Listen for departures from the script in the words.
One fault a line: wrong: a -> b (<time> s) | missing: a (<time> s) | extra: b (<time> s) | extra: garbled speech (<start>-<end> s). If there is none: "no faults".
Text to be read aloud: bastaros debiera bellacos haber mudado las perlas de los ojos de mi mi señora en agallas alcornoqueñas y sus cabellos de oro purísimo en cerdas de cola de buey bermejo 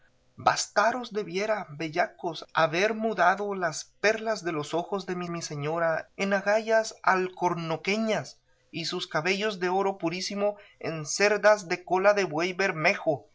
no faults